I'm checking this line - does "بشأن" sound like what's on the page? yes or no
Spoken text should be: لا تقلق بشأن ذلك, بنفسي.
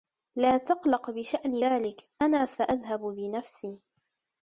yes